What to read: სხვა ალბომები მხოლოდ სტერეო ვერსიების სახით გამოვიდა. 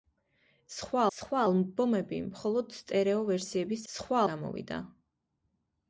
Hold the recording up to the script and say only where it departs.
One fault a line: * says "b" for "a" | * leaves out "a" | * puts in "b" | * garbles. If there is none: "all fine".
* puts in "სხვა"
* says "სხვა" for "სახით"